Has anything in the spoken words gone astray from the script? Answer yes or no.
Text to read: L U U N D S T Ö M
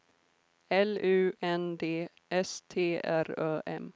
yes